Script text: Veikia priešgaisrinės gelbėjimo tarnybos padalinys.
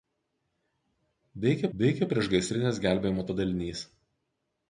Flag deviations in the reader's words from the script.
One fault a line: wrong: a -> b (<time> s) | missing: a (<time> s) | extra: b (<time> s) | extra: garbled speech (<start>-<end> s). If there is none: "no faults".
extra: veikia (1.8 s)
missing: tarnybos (3.3 s)